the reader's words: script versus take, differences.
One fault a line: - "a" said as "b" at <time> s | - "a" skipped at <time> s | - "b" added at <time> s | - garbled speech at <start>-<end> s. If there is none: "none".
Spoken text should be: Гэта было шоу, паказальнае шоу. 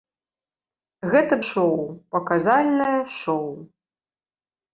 - "было" skipped at 1.3 s